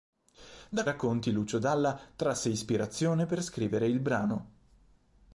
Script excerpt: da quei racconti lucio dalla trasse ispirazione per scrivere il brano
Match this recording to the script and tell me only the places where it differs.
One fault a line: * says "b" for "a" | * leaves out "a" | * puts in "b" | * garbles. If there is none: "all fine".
* leaves out "quei"